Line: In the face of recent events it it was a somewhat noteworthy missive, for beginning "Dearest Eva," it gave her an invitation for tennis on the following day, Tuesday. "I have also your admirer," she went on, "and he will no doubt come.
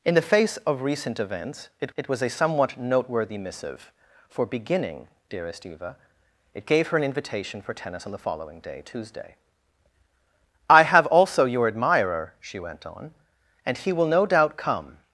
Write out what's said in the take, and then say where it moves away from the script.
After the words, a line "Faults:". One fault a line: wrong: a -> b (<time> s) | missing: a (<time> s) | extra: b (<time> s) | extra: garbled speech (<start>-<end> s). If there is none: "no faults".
In the face of recent events it it was a somewhat noteworthy missive, for beginning "Dearest Eva," it gave her an invitation for tennis on the following day, Tuesday. "I have also your admirer," she went on, "and he will no doubt come.
Faults:
no faults